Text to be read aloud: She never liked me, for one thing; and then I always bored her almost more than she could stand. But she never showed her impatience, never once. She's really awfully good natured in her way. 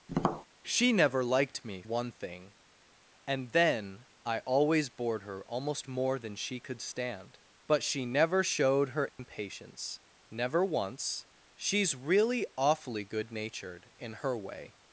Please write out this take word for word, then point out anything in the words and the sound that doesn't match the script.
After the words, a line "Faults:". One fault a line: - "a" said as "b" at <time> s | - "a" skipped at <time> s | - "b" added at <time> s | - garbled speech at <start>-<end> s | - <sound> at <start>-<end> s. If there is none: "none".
She never liked me, one thing; and then I always bored her almost more than she could stand. But she never showed her impatience, never once. She's really awfully good natured in her way.
Faults:
- tap at 0.1-0.5 s
- "for" skipped at 1.8 s
- dropout at 9.1-9.2 s